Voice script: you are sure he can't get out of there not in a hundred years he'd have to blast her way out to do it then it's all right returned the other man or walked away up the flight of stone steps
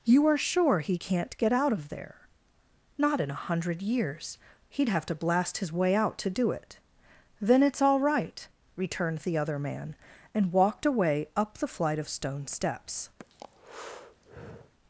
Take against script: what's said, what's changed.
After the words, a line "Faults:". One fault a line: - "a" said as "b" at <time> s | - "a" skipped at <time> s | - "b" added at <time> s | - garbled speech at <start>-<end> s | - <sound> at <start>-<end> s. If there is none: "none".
you are sure he can't get out of there not in a hundred years he'd have to blast his way out to do it then it's all right returned the other man and walked away up the flight of stone steps
Faults:
- "her" said as "his" at 5.6 s
- "or" said as "and" at 10.3 s
- breath at 13.2-14.7 s